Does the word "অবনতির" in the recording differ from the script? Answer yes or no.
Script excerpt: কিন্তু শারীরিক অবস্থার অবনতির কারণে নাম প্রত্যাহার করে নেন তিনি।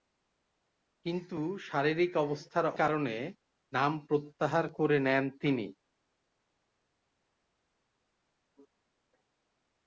yes